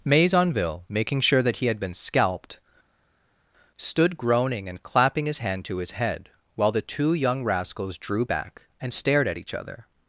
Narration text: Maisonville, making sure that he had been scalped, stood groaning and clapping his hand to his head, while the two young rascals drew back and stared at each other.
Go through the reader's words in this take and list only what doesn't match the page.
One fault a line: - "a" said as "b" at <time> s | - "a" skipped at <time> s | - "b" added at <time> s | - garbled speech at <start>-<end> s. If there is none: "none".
none